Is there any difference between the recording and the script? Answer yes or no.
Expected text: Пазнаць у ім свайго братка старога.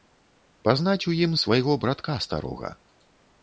no